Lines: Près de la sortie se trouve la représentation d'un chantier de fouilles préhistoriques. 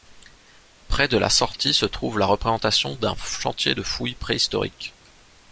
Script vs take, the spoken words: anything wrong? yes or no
no